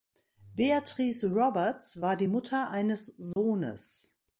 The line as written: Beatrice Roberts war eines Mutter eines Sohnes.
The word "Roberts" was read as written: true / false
true